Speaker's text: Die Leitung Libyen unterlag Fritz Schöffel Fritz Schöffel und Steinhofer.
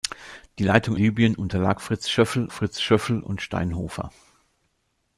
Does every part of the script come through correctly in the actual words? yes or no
yes